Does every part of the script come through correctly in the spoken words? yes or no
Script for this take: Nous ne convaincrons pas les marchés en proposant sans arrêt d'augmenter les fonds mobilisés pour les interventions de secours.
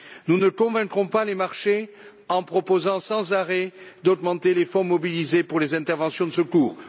yes